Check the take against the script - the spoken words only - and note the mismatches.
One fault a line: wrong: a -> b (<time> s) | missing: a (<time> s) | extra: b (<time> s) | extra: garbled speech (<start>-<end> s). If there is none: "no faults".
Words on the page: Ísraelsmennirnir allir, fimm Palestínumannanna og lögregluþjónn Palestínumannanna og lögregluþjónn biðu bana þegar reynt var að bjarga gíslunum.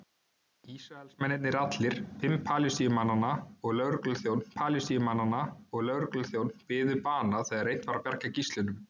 no faults